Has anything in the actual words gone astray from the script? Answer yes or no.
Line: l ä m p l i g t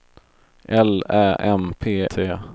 yes